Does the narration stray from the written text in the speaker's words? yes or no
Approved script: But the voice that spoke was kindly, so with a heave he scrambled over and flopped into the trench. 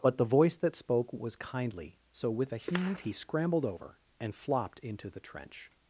no